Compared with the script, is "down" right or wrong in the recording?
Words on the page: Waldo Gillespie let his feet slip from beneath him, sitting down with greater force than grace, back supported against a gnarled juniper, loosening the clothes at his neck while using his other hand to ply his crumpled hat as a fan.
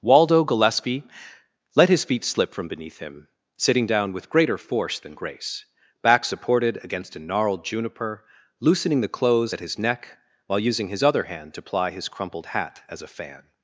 right